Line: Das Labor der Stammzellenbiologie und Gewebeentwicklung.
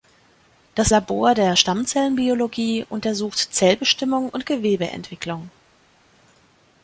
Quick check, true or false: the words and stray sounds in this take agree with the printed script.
false